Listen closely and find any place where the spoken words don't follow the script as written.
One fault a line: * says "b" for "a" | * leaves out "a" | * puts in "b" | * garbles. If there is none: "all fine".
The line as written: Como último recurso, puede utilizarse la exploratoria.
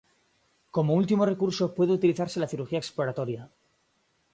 * puts in "cirugía"